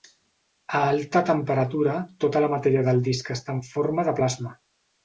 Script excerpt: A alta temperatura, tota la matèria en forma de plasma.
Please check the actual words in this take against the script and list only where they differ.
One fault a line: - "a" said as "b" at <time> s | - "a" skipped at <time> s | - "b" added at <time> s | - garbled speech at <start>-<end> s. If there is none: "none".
- "del disc està" added at 2.9 s